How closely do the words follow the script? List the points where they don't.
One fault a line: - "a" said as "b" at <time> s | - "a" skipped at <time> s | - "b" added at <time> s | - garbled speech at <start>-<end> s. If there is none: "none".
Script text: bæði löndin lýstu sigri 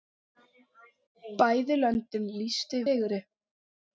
none